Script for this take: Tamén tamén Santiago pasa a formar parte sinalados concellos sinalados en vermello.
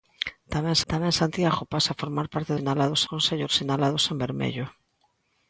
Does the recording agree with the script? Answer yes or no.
yes